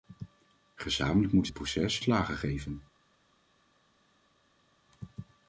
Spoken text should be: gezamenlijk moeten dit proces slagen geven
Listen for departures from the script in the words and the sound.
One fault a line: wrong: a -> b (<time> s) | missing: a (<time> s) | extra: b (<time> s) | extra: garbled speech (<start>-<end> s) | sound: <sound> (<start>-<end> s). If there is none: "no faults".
no faults